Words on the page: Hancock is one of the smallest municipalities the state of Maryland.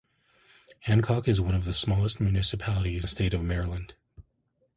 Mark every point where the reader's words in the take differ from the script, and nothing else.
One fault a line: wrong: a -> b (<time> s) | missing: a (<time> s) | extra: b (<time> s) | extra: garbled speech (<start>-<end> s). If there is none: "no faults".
no faults